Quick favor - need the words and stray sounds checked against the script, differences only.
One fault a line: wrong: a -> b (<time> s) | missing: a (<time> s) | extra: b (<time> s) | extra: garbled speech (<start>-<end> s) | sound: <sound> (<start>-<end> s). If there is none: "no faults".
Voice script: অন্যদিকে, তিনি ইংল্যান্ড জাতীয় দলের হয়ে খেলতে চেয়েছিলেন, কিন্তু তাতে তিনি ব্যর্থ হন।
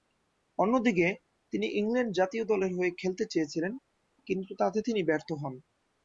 no faults